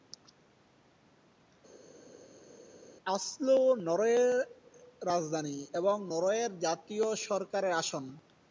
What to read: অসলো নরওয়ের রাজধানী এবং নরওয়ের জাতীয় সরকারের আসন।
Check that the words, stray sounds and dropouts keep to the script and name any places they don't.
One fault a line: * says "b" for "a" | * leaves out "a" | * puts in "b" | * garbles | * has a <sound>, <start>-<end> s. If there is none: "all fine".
all fine